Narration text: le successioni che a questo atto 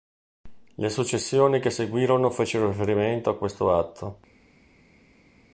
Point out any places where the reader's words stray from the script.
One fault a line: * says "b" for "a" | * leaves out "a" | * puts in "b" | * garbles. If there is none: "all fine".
* puts in "seguirono fecero riferimento"